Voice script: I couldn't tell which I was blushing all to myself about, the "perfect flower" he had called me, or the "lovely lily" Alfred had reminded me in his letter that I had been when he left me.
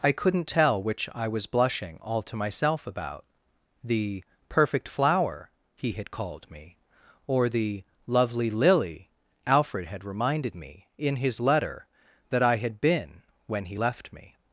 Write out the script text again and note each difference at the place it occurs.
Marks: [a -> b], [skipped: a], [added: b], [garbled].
I couldn't tell which I was blushing all to myself about, the "perfect flower" he had called me, or the "lovely lily" Alfred had reminded me in his letter that I had been when he left me.